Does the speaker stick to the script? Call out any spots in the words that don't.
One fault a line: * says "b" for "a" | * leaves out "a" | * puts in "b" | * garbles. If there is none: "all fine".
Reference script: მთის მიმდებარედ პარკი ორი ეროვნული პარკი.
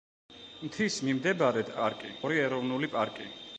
all fine